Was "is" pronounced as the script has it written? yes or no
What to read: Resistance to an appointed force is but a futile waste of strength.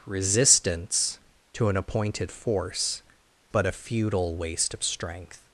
no